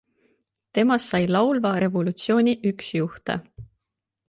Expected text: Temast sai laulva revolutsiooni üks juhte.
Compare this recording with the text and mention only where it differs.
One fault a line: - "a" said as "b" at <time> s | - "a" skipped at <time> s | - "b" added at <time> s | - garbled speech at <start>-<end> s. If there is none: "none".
none